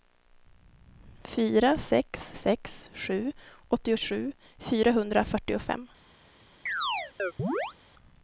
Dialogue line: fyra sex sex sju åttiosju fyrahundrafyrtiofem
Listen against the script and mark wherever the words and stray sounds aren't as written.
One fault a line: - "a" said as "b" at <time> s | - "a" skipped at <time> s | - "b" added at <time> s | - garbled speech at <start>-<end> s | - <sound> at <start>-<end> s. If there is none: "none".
- chirp at 6.7-7.7 s